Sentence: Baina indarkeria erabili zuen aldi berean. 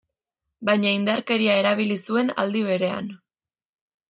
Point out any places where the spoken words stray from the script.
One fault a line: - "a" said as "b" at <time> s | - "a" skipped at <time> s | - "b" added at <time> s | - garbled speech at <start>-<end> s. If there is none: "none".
none